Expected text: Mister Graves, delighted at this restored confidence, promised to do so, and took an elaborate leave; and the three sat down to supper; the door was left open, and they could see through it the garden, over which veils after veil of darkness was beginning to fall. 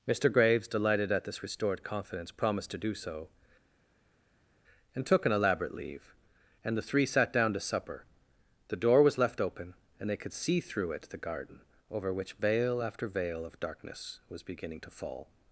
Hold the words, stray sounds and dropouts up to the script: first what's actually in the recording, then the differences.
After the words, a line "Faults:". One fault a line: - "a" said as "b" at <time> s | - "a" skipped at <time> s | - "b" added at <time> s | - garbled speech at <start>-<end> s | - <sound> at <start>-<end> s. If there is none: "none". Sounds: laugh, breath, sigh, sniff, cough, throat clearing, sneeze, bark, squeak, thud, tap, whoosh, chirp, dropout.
Mister Graves, delighted at this restored confidence, promised to do so, and took an elaborate leave; and the three sat down to supper; the door was left open, and they could see through it the garden, over which veil after veil of darkness was beginning to fall.
Faults:
- "veils" said as "veil" at 12.3 s